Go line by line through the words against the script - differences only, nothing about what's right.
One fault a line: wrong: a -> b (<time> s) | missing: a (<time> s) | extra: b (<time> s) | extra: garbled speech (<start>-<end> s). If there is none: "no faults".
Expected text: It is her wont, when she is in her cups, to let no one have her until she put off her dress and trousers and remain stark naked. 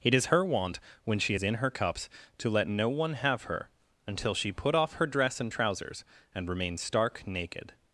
no faults